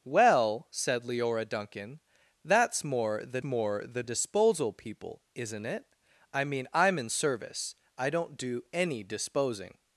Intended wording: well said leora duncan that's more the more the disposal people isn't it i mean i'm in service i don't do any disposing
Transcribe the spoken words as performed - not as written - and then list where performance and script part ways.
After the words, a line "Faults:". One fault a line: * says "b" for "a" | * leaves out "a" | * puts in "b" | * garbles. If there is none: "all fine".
well said leora duncan that's more the more the disposal people isn't it i mean i'm in service i don't do any disposing
Faults:
all fine